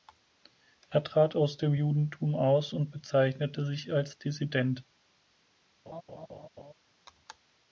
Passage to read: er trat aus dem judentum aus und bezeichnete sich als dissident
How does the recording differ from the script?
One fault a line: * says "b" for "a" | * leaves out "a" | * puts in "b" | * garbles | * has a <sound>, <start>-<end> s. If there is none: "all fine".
* has a laugh, 5.9-6.7 s